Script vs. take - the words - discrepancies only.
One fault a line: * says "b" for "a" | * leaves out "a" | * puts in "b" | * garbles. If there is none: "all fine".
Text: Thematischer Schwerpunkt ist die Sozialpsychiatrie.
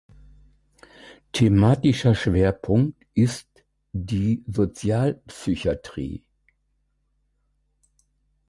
all fine